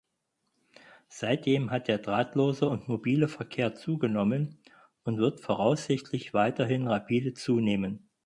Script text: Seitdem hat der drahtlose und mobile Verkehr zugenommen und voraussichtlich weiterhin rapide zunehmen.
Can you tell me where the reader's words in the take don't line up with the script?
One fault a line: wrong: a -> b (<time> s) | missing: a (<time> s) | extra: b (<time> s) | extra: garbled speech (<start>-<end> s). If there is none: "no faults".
extra: wird (5.2 s)